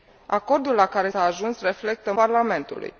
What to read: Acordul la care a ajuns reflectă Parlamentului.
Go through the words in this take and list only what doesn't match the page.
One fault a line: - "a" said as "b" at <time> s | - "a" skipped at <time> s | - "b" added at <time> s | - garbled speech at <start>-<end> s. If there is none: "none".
none